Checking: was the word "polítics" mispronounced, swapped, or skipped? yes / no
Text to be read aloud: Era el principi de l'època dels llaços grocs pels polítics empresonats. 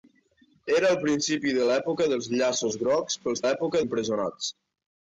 yes